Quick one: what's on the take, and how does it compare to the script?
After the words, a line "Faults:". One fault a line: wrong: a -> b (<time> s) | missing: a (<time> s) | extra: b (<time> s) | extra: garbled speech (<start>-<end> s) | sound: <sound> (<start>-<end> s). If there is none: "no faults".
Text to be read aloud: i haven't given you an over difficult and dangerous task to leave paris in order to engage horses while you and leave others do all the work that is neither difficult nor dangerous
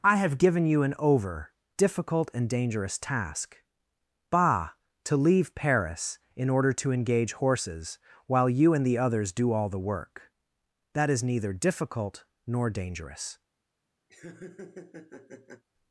i have given you an over difficult and dangerous task bah to leave paris in order to engage horses while you and the others do all the work that is neither difficult nor dangerous
Faults:
wrong: haven't -> have (0.1 s)
extra: bah (4.3 s)
wrong: leave -> the (8.8 s)
sound: laugh (14.1-15.6 s)